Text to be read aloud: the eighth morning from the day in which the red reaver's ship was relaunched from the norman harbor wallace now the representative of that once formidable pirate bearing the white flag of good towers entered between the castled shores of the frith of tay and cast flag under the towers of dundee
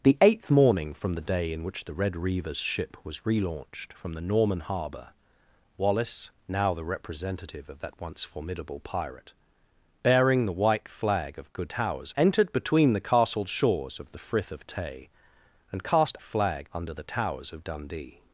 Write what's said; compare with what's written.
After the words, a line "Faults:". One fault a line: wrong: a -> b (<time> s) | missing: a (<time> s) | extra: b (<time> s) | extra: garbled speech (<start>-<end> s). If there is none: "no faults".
the eighth morning from the day in which the red reaver's ship was relaunched from the norman harbor wallace now the representative of that once formidable pirate bearing the white flag of good towers entered between the castled shores of the frith of tay and cast flag under the towers of dundee
Faults:
no faults